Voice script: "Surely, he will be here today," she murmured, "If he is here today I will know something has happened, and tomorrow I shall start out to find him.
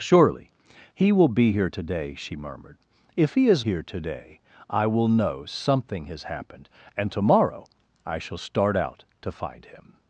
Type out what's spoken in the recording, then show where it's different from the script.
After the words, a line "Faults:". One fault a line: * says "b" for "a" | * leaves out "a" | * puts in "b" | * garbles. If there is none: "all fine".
"Surely, he will be here today," she murmured, "If he is here today I will know something has happened, and tomorrow I shall start out to find him.
Faults:
all fine